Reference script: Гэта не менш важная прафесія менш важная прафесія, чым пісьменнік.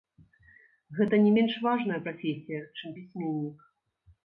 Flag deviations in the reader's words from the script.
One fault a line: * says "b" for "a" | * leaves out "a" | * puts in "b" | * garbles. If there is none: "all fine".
* leaves out "менш важная прафесія"